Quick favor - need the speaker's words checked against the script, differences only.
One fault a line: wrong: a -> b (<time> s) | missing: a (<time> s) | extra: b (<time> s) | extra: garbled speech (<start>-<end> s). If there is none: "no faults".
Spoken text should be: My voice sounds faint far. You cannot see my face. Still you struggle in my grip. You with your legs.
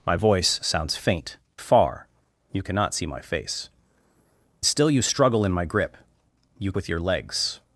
no faults